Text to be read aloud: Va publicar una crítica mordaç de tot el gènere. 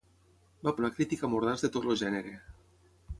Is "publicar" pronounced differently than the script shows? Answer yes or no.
yes